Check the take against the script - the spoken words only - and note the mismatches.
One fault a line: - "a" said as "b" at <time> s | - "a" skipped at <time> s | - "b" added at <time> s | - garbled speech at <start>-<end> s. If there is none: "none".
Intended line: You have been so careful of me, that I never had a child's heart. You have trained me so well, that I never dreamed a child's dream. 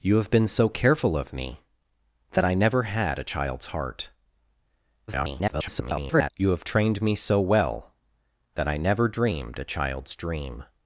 - garbled speech at 5.1-6.3 s